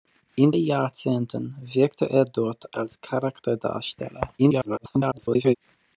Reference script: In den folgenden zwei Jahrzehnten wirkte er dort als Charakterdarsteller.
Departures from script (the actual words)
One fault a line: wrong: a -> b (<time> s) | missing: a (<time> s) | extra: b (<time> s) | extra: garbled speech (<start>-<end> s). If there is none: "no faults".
missing: den folgenden zwei (0.5 s)
extra: garbled speech (4.4-5.6 s)